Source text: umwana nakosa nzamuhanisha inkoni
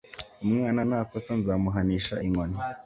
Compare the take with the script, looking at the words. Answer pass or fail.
pass